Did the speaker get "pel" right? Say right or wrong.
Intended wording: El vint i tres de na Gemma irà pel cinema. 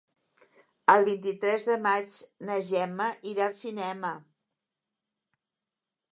wrong